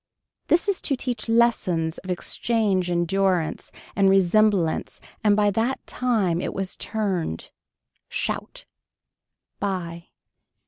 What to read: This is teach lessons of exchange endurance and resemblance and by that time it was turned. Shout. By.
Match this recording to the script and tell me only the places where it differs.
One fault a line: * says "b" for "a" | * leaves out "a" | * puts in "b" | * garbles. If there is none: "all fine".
* puts in "to"